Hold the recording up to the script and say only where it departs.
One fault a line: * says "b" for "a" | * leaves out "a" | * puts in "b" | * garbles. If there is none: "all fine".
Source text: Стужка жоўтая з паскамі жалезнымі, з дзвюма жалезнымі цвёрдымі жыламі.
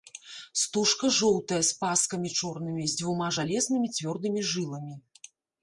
* says "чорнымі" for "жалезнымі"